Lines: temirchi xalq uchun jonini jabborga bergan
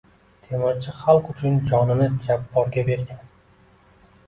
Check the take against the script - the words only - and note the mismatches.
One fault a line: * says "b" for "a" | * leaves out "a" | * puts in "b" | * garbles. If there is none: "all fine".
all fine